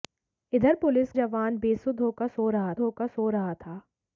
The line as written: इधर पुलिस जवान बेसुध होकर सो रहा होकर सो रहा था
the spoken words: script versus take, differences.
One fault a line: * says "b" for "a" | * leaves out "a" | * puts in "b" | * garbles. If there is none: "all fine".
all fine